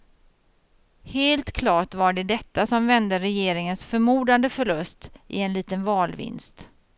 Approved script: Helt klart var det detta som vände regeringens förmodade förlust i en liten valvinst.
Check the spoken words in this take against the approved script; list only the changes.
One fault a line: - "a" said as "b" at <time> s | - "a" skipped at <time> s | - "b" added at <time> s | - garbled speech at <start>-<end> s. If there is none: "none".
none